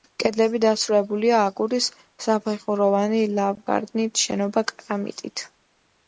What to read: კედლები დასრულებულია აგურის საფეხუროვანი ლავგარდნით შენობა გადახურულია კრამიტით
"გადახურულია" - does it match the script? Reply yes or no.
no